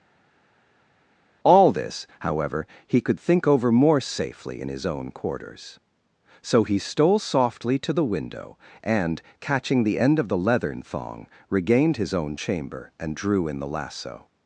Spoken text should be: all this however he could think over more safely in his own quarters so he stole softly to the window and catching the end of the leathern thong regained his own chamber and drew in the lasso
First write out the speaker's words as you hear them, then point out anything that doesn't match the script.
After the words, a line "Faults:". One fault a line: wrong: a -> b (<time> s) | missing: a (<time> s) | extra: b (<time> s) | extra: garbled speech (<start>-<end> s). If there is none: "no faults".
all this however he could think over more safely in his own quarters so he stole softly to the window and catching the end of the leathern thong regained his own chamber and drew in the lasso
Faults:
no faults